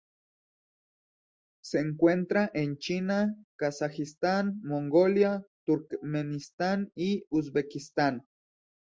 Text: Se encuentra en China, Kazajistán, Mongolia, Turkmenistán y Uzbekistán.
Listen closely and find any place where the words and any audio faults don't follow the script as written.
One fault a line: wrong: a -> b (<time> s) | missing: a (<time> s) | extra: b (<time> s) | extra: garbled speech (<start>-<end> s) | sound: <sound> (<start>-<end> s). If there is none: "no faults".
no faults